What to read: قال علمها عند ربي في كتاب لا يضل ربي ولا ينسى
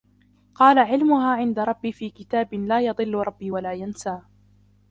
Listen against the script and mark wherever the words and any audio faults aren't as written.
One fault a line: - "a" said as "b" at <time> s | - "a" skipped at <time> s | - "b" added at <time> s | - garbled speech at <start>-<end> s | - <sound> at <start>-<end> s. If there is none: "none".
none